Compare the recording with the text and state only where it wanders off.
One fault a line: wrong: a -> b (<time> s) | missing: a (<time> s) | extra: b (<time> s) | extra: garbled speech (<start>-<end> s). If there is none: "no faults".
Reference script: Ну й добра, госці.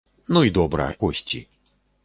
no faults